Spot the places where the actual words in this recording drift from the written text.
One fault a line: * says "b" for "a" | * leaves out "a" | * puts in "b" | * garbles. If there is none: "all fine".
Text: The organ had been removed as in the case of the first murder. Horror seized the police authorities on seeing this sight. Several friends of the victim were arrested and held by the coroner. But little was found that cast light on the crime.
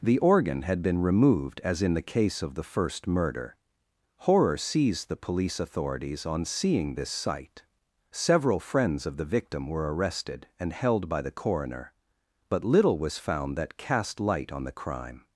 all fine